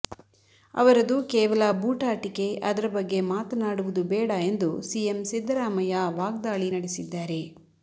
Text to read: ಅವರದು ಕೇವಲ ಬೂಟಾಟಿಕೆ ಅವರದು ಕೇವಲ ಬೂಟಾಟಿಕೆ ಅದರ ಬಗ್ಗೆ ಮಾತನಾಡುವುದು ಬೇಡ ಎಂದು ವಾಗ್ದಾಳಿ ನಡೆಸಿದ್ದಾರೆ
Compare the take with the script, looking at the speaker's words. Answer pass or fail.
fail